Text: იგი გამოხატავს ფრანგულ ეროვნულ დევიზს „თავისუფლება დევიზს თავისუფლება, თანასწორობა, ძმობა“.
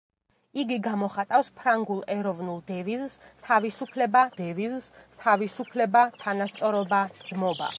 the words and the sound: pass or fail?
pass